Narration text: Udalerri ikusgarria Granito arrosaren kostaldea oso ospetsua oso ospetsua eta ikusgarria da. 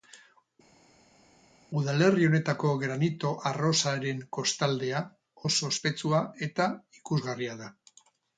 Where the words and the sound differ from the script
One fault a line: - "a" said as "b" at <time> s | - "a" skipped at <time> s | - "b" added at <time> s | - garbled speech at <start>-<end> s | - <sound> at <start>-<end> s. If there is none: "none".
- "ikusgarria" said as "honetako" at 2.3 s
- "oso ospetsua" skipped at 6.2 s